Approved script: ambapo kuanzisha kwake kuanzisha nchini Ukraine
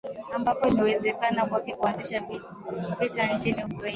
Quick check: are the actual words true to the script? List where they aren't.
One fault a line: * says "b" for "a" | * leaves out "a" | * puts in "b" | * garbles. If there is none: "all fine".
* says "imewezekana" for "kuanzisha"
* puts in "vita"